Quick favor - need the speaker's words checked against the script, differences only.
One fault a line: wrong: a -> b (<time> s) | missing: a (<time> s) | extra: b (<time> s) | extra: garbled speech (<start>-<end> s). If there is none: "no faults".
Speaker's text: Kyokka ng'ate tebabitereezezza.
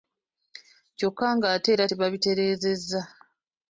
extra: era (1.7 s)